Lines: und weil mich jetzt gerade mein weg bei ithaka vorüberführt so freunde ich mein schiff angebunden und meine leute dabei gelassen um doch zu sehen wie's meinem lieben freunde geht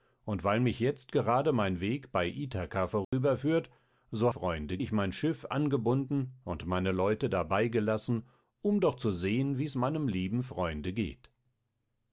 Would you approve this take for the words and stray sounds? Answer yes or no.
no